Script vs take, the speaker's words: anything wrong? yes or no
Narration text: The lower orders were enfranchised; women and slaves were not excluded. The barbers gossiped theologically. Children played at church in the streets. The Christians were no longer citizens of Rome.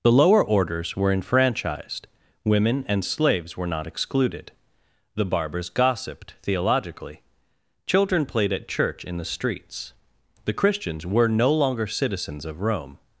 no